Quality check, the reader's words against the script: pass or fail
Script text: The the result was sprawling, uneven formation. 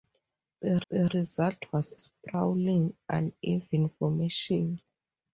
pass